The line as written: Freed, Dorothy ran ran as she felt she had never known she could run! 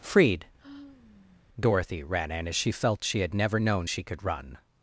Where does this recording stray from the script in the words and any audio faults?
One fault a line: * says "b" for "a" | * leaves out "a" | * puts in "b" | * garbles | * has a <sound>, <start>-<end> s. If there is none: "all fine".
* has a sigh, 0.6-1.5 s
* says "in" for "ran"